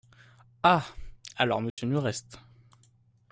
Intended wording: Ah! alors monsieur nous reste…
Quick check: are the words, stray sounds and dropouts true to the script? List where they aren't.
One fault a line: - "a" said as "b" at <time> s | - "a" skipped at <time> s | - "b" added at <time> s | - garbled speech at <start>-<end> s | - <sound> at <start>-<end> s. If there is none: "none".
- dropout at 1.7-1.8 s